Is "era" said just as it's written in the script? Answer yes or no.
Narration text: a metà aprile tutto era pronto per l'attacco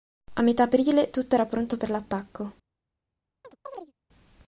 yes